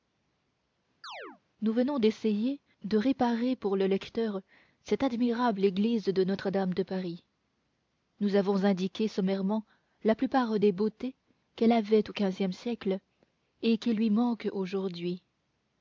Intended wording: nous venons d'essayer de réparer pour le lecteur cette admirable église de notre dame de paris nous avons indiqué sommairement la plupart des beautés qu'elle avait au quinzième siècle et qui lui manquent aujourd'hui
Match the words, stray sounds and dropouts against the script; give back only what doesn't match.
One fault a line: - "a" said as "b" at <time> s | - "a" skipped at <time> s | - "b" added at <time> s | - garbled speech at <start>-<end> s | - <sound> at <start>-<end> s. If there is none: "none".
- chirp at 1.0-1.4 s